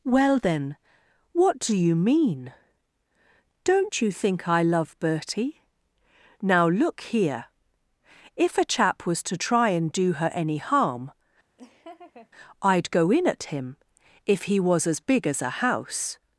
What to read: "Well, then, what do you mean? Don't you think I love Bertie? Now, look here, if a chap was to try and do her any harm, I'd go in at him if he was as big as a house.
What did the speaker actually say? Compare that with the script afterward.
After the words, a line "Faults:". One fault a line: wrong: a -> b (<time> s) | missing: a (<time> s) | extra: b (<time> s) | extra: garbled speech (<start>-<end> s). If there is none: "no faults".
"Well, then, what do you mean? Don't you think I love Bertie? Now, look here, if a chap was to try and do her any harm, I'd go in at him if he was as big as a house.
Faults:
no faults